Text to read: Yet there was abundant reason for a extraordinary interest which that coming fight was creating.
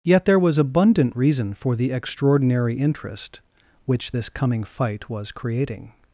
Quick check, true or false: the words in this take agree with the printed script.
false